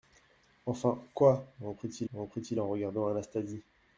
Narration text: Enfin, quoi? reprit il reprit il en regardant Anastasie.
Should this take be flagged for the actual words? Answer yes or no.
no